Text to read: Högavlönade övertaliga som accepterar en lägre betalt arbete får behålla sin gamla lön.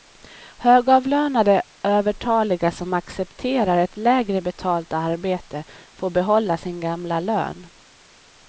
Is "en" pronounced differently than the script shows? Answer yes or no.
yes